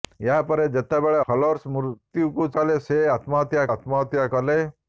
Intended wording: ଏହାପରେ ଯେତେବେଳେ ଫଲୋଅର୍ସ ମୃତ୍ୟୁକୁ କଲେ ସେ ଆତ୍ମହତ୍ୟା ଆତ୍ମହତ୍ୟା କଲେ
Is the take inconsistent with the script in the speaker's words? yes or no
no